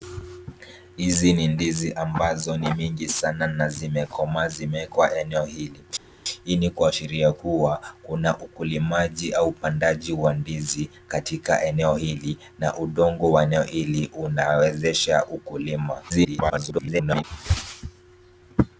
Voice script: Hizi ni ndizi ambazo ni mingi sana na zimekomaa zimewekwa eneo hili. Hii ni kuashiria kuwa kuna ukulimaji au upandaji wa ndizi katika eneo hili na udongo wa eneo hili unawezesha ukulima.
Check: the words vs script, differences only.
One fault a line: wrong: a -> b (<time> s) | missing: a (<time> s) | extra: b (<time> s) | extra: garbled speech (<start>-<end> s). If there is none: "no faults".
extra: garbled speech (16.1-17.2 s)